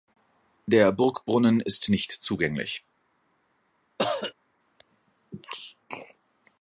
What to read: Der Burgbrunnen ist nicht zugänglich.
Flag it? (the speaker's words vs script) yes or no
no